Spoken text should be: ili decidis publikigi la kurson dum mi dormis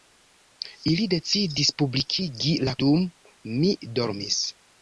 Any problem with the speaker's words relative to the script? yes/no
yes